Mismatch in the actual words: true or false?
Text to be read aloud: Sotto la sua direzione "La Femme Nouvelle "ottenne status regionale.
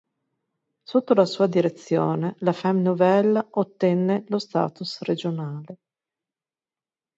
true